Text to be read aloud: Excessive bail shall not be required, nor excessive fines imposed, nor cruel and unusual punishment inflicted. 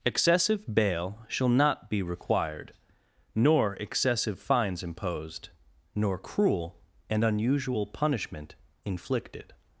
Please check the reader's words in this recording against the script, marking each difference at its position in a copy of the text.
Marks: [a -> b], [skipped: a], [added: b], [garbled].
Excessive bail shall not be required, nor excessive fines imposed, nor cruel and unusual punishment inflicted.